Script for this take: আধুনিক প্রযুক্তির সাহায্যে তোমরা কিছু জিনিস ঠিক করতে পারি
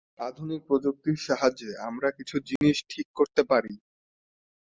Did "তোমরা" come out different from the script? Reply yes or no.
yes